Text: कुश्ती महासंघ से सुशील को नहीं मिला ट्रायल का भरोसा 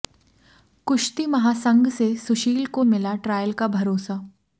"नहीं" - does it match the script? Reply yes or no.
no